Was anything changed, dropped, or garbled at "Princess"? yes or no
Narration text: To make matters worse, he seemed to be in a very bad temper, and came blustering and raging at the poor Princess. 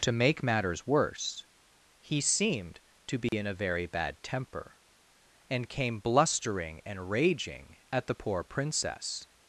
no